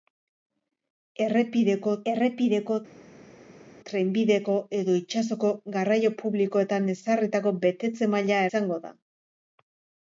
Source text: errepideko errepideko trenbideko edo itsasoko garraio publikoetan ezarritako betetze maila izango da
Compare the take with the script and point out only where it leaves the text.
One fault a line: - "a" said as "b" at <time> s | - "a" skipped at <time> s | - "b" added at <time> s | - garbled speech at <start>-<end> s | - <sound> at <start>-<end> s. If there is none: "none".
none